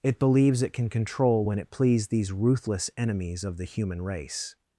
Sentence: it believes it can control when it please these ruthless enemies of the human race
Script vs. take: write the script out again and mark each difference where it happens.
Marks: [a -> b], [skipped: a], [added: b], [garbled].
it believes it can control when it please these ruthless enemies of the human race